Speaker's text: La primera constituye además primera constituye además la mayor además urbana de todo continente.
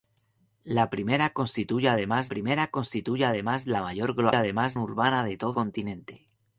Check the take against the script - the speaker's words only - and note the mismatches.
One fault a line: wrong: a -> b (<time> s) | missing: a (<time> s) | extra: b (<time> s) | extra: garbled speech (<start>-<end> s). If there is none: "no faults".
no faults